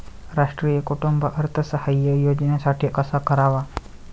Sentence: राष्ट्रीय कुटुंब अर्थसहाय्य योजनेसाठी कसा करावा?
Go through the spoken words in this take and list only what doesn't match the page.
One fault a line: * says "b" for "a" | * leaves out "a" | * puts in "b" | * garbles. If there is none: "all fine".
all fine